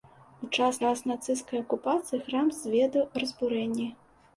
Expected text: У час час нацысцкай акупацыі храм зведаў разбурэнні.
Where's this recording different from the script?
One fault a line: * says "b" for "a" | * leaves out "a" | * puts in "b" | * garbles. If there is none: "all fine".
all fine